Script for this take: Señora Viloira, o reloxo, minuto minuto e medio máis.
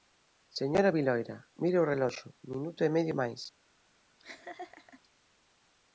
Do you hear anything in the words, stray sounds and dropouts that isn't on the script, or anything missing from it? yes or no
yes